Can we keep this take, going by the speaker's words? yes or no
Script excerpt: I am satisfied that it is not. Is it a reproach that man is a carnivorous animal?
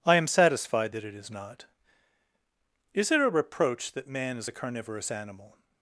yes